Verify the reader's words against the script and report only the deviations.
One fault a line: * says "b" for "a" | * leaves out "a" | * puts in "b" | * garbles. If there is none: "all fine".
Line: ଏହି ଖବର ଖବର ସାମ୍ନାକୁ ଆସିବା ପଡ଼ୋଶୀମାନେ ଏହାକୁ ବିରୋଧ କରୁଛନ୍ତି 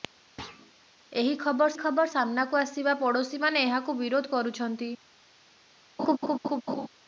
all fine